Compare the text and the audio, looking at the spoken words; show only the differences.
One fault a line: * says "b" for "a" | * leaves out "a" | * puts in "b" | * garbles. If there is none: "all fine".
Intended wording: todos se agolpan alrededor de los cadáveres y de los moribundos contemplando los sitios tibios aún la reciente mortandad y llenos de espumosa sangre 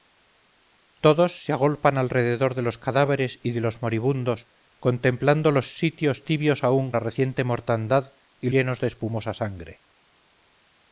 all fine